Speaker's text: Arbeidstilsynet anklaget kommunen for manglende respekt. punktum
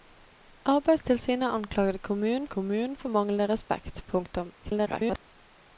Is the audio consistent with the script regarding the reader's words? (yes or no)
no